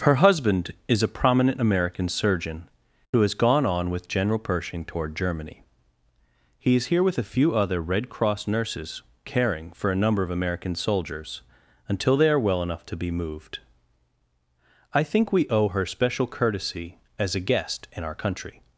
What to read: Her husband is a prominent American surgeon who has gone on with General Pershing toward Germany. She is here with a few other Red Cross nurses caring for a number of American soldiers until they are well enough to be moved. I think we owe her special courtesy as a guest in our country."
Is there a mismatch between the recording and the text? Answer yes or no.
yes